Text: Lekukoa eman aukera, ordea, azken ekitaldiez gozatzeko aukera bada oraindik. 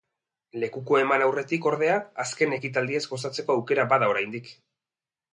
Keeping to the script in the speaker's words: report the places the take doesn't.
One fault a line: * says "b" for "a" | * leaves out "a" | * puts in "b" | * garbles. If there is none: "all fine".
* says "aurretik" for "aukera"